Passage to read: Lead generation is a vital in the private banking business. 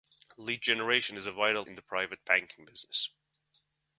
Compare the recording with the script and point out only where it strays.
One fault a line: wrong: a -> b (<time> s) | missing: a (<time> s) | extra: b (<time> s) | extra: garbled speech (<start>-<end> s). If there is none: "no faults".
no faults